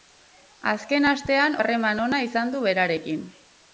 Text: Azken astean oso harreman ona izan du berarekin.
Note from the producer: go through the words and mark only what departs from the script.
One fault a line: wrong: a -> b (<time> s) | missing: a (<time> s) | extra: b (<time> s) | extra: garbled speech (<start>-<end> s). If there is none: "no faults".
missing: oso (1.6 s)